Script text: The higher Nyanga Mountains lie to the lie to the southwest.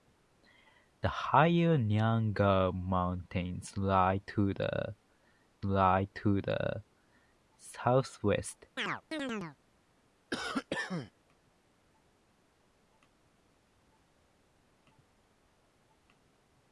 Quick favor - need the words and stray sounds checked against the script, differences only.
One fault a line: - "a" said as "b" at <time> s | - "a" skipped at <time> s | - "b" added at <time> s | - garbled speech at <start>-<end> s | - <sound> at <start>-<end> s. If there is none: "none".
- chirp at 8.8-9.6 s
- cough at 10.3-11.1 s